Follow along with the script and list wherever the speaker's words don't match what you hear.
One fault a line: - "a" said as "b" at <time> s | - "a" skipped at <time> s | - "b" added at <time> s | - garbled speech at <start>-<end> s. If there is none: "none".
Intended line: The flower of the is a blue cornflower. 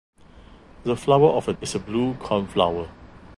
none